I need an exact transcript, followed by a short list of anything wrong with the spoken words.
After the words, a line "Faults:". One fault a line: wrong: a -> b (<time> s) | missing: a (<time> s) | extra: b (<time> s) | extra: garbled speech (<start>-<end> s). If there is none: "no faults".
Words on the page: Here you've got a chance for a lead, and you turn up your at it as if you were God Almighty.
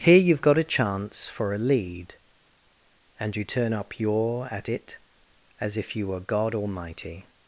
Here you've got a chance for a lead, and you turn up your at it as if you were God Almighty.
Faults:
no faults